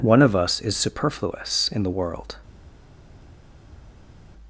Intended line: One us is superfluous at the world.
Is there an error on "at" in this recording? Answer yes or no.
yes